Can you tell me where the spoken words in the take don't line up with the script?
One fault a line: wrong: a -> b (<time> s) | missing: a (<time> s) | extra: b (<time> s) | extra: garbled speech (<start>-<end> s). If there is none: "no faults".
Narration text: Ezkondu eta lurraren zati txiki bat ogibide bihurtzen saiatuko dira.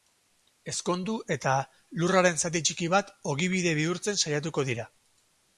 no faults